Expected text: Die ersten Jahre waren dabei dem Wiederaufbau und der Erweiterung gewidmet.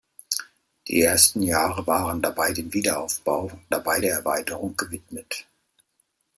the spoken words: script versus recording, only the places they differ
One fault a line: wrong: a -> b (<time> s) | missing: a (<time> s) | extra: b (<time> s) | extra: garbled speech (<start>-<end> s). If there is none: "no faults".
wrong: und -> dabei (3.7 s)